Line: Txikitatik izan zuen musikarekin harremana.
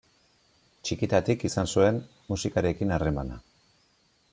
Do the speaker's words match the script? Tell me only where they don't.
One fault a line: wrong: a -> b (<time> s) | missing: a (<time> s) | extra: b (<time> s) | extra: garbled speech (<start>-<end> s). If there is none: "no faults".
no faults